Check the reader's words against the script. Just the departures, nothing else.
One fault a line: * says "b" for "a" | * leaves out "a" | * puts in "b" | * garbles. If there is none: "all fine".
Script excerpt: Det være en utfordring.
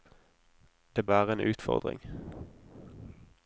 all fine